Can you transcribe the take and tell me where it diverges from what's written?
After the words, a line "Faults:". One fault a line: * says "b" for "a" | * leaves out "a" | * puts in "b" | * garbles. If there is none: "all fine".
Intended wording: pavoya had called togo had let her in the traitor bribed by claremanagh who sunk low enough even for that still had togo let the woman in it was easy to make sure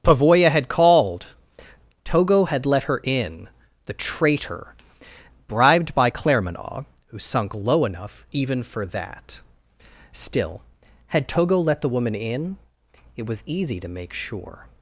pavoya had called togo had let her in the traitor bribed by claremanagh who sunk low enough even for that still had togo let the woman in it was easy to make sure
Faults:
all fine